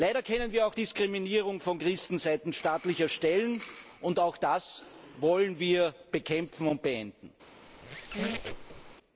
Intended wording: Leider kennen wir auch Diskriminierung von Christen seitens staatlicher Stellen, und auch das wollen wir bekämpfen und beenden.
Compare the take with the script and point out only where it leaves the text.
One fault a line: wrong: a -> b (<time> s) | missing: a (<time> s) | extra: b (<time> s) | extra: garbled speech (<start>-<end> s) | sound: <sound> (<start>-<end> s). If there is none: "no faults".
sound: squeak (7.7-9.0 s)